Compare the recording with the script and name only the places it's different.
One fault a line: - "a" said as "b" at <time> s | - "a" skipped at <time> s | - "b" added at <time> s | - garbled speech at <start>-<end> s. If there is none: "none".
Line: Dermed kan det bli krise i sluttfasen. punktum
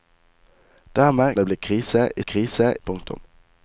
- "kan" skipped at 1.4 s
- "sluttfasen" said as "krise" at 2.2 s